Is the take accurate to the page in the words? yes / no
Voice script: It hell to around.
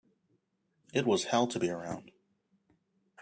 no